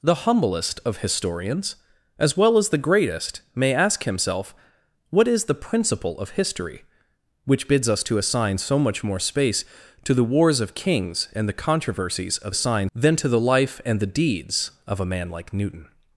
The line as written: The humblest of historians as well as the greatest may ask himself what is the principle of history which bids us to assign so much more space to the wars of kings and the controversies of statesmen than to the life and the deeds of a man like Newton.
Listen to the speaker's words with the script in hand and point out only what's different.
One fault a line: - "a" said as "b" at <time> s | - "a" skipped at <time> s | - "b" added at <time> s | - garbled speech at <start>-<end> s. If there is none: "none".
- "statesmen" said as "assign" at 12.5 s